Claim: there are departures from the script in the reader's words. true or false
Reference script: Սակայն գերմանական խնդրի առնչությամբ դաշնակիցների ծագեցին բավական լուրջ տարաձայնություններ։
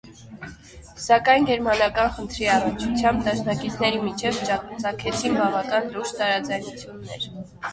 true